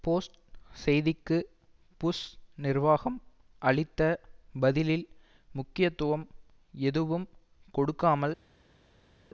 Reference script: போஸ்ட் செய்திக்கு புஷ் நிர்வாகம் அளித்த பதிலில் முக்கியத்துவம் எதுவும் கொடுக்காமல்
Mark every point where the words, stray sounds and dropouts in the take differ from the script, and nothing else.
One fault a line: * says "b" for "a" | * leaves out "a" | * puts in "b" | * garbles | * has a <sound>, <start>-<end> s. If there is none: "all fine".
all fine